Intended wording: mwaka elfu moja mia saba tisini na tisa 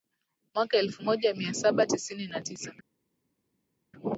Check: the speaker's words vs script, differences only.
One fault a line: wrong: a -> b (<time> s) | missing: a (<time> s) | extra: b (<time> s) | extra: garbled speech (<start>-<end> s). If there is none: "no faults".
no faults